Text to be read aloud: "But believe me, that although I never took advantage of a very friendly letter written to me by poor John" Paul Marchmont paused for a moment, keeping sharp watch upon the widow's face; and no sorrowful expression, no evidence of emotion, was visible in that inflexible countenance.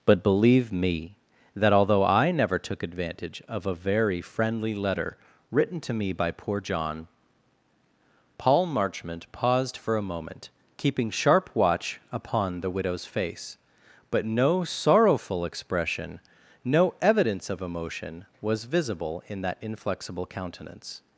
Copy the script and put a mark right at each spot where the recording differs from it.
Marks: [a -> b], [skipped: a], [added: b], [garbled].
"But believe me, that although I never took advantage of a very friendly letter written to me by poor John" Paul Marchmont paused for a moment, keeping sharp watch upon the widow's face; [and -> but] no sorrowful expression, no evidence of emotion, was visible in that inflexible countenance.